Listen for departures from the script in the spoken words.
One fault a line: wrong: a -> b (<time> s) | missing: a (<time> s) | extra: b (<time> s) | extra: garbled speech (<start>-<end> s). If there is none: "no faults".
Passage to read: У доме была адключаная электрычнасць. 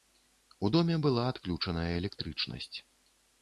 no faults